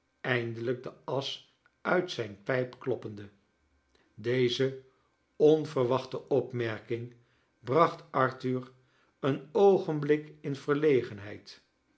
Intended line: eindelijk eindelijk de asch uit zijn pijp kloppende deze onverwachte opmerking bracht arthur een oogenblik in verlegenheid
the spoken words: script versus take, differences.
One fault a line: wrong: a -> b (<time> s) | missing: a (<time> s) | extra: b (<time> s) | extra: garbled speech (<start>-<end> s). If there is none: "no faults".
missing: eindelijk (0.8 s)